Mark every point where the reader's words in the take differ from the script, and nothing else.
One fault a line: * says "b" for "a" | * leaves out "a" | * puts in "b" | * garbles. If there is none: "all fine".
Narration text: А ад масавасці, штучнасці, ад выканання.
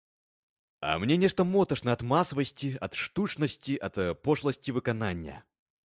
* puts in "мне нешта моташна"
* puts in "ад"
* puts in "пошласці"